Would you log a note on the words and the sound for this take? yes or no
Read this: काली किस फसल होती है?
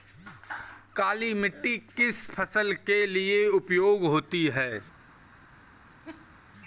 yes